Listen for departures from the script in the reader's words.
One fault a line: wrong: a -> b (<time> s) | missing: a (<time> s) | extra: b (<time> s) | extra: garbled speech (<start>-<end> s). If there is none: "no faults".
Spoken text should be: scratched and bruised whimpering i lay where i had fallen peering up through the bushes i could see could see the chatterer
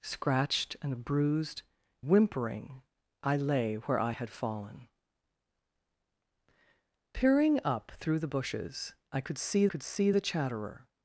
no faults